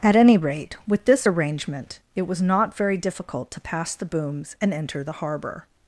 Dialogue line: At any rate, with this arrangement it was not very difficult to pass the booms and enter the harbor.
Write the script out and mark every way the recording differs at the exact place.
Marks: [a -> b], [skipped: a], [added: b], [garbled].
At any rate, with this arrangement it was not very difficult to pass the booms and enter the harbor.